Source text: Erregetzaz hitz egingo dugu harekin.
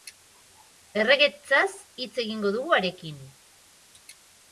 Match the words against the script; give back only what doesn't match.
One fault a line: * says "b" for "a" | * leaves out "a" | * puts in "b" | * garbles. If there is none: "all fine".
all fine